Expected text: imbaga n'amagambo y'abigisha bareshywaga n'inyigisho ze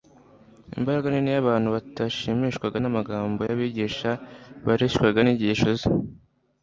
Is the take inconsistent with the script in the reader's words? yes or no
yes